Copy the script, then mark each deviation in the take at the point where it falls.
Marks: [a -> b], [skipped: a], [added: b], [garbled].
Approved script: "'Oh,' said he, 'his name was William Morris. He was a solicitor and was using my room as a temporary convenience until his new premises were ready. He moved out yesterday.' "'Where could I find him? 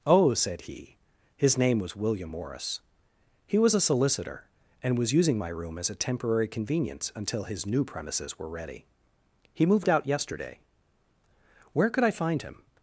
"'Oh,' said he, 'his name was William Morris. He was a solicitor and was using my room as a temporary convenience until his new premises were ready. He moved out yesterday.' "'Where could I find him?